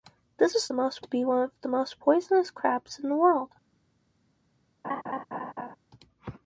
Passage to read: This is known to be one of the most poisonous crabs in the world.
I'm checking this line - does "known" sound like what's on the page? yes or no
no